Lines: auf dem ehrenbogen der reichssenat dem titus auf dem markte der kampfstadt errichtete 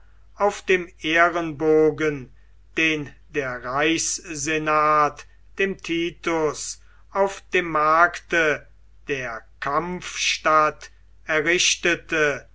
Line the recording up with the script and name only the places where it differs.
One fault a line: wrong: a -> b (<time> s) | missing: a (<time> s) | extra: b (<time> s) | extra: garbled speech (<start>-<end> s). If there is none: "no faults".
extra: den (2.8 s)